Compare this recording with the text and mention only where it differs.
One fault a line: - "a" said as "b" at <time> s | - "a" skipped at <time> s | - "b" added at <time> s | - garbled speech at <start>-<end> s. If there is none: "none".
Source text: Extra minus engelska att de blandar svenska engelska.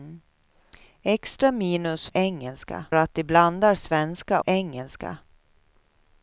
none